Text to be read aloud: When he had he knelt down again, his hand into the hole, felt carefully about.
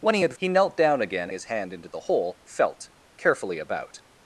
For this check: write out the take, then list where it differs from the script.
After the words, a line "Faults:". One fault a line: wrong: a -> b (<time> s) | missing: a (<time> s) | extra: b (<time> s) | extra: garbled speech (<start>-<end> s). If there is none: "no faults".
When he had he knelt down again, his hand into the hole, felt carefully about.
Faults:
no faults